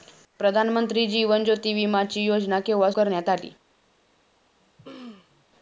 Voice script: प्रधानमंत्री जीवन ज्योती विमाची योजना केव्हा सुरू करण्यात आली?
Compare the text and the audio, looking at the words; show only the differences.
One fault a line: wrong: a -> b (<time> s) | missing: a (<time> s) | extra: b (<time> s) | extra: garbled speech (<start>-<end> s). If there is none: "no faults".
missing: सुरू (2.9 s)